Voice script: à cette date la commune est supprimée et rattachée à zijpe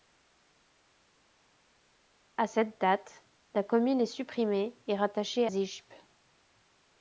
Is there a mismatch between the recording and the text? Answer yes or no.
yes